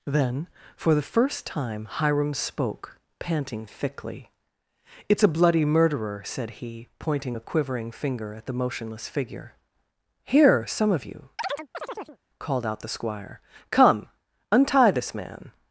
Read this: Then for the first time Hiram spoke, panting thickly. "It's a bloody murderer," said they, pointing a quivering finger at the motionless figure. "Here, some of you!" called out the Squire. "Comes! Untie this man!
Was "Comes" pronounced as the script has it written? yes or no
no